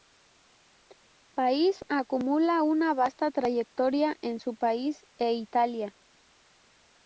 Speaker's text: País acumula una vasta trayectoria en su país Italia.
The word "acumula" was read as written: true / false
true